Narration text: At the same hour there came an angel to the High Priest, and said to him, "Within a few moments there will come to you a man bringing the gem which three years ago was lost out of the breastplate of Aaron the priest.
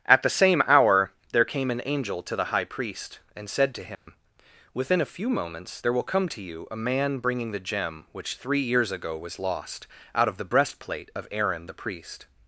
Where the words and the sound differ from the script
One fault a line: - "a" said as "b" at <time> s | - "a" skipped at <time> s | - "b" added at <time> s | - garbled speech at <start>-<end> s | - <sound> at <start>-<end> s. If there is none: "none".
- dropout at 3.9-4.1 s